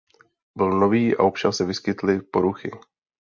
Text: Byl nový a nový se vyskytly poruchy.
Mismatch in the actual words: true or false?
true